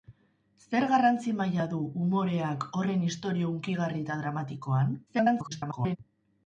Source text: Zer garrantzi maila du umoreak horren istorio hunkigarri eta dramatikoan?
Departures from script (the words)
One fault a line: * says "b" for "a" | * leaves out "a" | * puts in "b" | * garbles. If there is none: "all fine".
* garbles